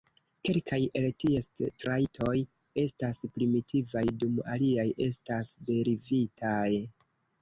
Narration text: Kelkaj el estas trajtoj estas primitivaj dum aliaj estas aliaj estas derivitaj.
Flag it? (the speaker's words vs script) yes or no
yes